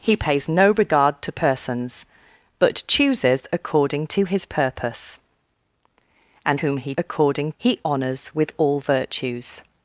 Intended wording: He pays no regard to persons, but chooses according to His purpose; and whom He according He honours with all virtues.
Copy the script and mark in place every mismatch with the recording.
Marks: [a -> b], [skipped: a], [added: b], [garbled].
He pays no regard to persons, but chooses according to His purpose; and whom He according He honours with all virtues.